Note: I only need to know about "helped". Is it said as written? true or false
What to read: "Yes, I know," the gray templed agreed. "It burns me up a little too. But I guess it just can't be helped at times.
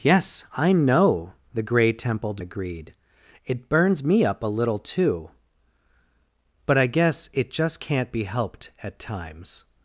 true